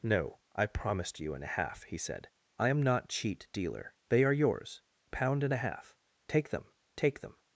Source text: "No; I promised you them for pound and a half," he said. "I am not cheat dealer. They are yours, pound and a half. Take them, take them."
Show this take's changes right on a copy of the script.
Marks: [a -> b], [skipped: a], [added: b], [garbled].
"No; I promised you [skipped: them for pound] and a half," he said. "I am not cheat dealer. They are yours, pound and a half. Take them, take them."